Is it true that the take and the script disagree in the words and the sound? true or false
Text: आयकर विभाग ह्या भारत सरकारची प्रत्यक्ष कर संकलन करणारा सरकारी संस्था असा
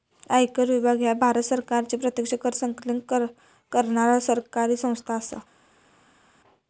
false